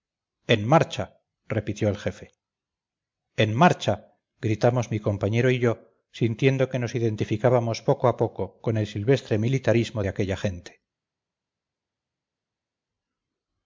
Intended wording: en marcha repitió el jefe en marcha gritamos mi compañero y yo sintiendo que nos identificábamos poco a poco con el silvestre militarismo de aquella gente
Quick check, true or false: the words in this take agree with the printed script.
true